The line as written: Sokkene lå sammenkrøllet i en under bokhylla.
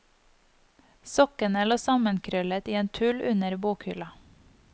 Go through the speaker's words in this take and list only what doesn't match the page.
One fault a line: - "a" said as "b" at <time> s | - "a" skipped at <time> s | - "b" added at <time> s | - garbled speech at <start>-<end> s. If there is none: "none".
- "tull" added at 2.9 s